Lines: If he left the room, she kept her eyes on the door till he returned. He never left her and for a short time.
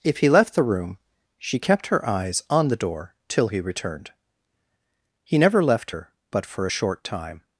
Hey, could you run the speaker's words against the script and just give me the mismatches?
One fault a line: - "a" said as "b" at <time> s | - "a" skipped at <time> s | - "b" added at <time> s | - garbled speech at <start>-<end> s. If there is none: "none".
- "and" said as "but" at 6.3 s